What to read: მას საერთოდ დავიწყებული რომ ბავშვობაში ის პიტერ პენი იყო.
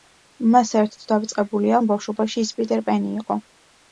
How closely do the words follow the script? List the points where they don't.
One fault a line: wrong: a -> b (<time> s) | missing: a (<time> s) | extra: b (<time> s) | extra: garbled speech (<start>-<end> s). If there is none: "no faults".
no faults